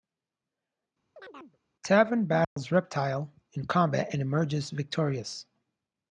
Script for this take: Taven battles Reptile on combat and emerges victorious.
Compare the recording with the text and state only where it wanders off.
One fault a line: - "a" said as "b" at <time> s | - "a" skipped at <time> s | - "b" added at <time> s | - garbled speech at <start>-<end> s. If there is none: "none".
- "on" said as "in" at 3.5 s